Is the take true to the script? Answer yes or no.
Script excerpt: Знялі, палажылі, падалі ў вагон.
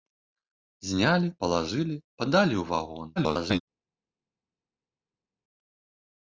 no